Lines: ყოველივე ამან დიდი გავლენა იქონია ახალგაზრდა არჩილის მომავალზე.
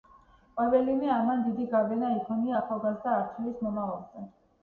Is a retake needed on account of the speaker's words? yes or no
no